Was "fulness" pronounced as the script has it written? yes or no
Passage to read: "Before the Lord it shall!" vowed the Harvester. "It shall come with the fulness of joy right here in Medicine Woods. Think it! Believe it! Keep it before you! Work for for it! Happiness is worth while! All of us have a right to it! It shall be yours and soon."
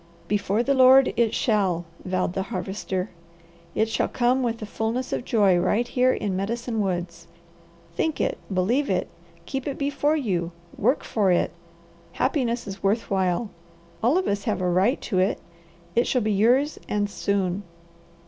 yes